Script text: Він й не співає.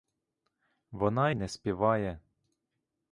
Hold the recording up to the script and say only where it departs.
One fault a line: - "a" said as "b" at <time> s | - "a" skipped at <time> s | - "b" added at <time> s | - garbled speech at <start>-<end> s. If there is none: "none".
- "Він" said as "Вона" at 0.9 s